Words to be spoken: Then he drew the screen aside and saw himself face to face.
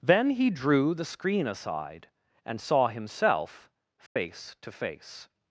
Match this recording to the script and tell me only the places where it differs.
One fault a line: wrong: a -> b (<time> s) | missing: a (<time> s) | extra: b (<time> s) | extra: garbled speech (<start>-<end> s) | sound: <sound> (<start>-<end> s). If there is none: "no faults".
sound: dropout (4.1-4.2 s)